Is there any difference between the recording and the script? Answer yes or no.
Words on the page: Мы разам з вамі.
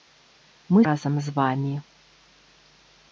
no